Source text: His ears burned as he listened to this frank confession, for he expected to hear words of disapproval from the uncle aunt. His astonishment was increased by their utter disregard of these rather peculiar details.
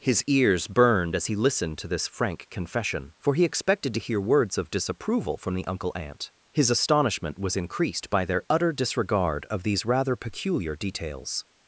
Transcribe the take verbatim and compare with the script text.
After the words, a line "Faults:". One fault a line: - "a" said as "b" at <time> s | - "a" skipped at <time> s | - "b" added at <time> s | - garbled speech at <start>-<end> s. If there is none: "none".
His ears burned as he listened to this frank confession, for he expected to hear words of disapproval from the uncle aunt. His astonishment was increased by their utter disregard of these rather peculiar details.
Faults:
none